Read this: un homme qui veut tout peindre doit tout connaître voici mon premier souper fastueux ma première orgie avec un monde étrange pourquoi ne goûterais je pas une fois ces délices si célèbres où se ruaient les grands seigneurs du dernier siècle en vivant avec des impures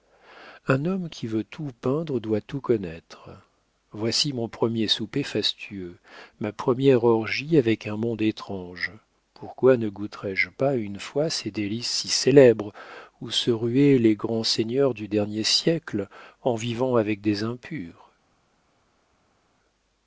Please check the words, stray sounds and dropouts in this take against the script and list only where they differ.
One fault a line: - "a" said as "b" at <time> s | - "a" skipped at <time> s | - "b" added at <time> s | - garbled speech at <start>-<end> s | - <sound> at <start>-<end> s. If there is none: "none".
none